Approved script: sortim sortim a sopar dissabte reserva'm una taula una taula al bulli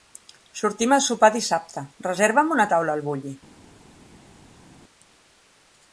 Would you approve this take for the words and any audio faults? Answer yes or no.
no